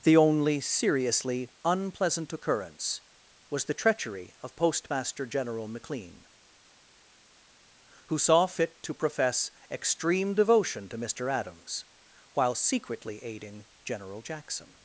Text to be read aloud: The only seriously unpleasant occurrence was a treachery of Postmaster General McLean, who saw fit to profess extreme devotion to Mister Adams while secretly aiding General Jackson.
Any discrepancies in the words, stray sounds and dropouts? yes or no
yes